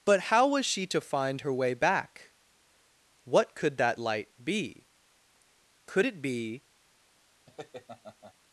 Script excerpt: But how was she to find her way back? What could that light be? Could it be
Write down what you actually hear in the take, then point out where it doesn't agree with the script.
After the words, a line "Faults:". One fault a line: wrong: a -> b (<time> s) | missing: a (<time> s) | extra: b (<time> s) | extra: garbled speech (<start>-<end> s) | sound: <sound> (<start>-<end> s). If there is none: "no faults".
But how was she to find her way back? What could that light be? Could it be
Faults:
sound: laugh (7.5-8.3 s)